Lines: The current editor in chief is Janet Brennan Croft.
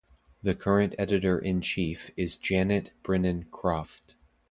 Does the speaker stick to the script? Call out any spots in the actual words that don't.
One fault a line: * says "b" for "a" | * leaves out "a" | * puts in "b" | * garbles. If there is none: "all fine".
all fine